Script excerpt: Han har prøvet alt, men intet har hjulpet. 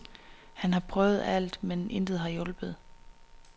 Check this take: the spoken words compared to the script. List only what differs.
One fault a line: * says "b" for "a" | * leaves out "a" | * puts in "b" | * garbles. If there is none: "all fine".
all fine